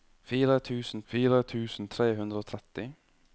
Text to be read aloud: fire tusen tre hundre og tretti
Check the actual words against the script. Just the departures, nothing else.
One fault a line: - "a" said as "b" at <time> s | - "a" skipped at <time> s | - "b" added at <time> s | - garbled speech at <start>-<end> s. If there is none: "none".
- "fire tusen" added at 1.1 s